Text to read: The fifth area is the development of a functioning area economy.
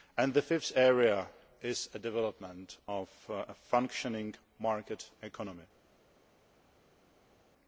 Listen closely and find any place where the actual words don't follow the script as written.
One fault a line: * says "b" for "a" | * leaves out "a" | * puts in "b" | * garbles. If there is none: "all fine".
* says "market" for "area"